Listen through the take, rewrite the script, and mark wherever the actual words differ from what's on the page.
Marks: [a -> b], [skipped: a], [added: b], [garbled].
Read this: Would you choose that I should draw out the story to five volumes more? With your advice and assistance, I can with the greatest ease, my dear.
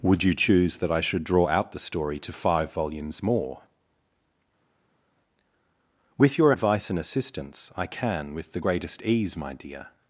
Would you choose that I should draw out the story to five volumes more? With your advice and assistance, I can with the greatest ease, my dear.